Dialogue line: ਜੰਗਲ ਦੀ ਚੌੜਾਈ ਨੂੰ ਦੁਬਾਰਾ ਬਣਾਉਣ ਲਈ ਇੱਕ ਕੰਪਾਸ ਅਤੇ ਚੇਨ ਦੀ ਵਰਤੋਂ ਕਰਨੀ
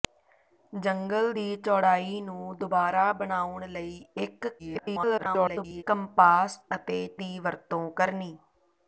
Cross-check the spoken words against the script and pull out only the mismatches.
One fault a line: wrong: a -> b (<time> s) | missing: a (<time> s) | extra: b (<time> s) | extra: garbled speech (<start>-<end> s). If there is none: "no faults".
extra: garbled speech (4.6-5.8 s)
missing: ਚੇਨ (7.0 s)